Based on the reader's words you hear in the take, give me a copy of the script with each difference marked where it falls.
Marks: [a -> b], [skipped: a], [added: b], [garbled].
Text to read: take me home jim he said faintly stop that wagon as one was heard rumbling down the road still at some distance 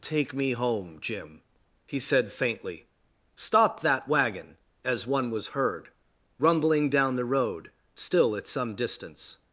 take me home jim he said faintly stop that wagon as one was heard rumbling down the road still at some distance